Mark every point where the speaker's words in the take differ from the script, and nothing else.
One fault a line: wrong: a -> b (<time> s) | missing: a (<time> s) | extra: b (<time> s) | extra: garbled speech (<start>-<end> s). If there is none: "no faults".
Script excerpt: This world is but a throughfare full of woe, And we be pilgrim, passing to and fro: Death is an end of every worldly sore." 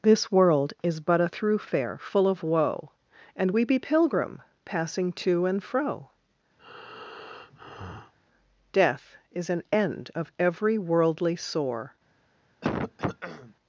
no faults